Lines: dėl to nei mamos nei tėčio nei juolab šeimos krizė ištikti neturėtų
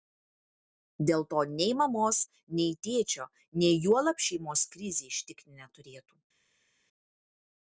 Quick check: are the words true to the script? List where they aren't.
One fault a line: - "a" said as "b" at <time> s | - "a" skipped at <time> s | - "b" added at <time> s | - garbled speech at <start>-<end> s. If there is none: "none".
none